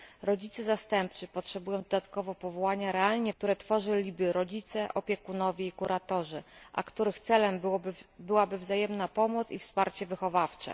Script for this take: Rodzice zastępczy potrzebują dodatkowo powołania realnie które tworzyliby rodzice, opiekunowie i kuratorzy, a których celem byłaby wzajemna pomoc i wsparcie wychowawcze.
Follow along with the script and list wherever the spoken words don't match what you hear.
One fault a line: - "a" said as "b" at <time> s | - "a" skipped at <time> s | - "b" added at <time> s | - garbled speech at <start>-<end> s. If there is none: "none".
none